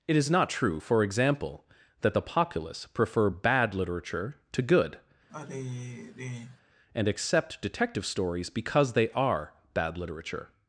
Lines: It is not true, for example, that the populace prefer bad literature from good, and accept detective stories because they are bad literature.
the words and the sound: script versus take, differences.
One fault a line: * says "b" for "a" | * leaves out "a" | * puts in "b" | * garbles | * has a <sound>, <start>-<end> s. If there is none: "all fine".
* says "to" for "from"
* has a sigh, 5.3-6.6 s